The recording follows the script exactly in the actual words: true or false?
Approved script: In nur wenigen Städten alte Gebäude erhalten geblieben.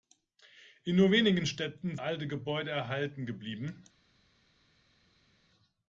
true